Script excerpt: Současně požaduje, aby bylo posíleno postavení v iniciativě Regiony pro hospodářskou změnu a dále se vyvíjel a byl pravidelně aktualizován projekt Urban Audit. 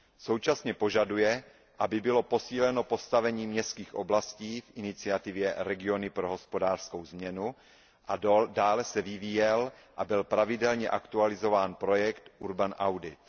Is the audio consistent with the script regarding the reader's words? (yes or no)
no